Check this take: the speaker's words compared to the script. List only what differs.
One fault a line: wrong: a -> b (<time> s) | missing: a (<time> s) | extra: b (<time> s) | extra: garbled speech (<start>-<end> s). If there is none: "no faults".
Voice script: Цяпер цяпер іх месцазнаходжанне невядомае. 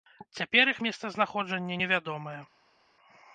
missing: цяпер (0.7 s)